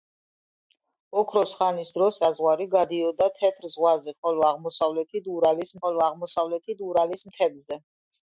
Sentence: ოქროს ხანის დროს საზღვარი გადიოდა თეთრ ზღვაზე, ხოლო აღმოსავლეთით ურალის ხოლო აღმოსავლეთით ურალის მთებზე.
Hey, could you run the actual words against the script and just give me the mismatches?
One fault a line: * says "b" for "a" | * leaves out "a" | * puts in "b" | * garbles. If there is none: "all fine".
all fine